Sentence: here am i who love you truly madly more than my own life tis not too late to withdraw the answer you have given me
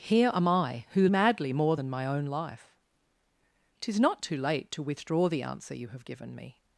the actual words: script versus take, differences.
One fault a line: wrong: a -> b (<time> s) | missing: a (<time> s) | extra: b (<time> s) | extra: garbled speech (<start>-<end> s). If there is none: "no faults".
missing: love you truly (1.1 s)